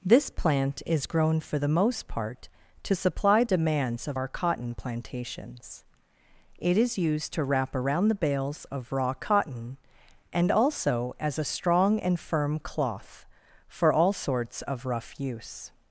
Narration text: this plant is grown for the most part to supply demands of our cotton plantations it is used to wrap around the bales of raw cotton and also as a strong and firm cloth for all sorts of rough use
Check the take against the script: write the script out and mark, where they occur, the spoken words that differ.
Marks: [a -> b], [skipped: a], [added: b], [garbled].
this plant is grown for the most part to supply demands of our cotton plantations it is used to wrap around the bales of raw cotton and also as a strong and firm cloth for all sorts of rough use